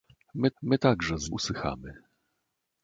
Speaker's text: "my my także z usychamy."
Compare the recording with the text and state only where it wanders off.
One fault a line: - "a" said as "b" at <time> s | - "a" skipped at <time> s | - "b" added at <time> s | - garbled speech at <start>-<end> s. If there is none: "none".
none